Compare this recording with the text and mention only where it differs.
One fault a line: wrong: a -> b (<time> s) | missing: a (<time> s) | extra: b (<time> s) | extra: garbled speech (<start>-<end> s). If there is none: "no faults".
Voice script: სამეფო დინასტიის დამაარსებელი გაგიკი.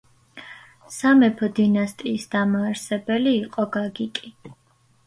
extra: იყო (3.5 s)